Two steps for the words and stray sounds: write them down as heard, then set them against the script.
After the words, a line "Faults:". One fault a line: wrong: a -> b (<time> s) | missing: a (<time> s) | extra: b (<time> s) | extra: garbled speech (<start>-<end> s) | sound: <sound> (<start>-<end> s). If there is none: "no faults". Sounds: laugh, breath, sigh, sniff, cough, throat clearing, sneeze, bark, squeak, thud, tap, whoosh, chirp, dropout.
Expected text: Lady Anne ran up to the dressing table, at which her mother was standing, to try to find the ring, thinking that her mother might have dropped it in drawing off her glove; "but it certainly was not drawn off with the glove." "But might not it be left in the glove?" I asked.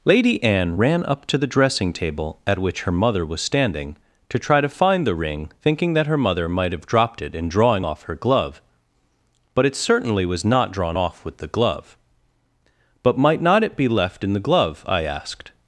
Lady Anne ran up to the dressing table, at which her mother was standing, to try to find the ring, thinking that her mother might have dropped it in drawing off her glove; "but it certainly was not drawn off with the glove." "But might not it be left in the glove?" I asked.
Faults:
no faults